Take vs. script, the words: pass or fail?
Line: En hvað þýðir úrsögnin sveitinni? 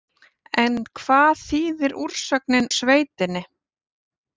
pass